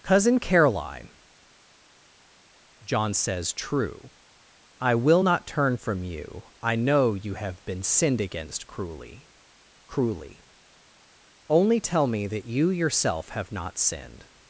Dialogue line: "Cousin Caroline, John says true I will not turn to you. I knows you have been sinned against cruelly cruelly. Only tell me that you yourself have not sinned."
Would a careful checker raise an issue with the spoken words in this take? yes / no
yes